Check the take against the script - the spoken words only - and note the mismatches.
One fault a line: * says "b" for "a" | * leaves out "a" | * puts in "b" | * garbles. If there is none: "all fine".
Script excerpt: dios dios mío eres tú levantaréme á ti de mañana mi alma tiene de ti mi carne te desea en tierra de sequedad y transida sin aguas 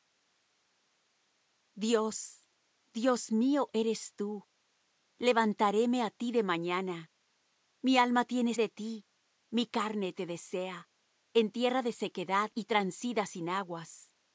all fine